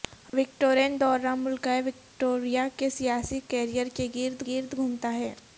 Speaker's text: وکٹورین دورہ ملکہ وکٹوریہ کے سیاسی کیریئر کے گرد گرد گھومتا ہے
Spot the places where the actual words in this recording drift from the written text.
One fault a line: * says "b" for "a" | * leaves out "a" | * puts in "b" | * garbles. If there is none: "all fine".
all fine